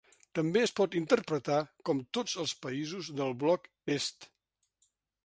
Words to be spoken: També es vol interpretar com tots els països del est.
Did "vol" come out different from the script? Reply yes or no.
yes